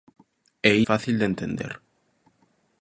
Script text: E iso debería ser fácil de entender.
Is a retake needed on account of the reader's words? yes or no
yes